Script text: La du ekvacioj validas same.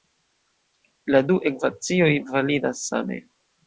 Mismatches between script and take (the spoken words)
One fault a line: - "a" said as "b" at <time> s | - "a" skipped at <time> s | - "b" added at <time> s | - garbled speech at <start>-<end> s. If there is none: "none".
none